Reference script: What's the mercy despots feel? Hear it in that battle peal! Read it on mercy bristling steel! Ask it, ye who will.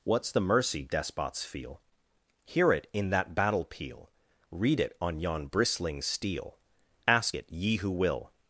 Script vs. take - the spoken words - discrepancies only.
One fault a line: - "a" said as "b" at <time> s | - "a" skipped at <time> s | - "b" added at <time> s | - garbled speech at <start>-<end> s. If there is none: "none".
- "mercy" said as "yon" at 5.2 s